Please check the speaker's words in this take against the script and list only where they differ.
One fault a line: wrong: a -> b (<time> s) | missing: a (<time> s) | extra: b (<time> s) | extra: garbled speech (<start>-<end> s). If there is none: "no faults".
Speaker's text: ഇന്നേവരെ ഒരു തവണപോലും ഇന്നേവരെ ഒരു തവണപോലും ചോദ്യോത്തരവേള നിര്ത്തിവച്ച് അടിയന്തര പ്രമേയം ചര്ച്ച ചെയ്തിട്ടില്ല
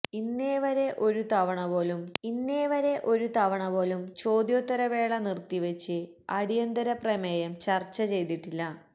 no faults